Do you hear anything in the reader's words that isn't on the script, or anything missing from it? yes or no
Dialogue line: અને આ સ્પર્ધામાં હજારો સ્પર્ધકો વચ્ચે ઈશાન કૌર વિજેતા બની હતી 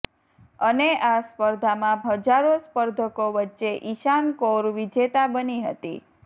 no